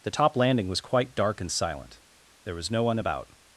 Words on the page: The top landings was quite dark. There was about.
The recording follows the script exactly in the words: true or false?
false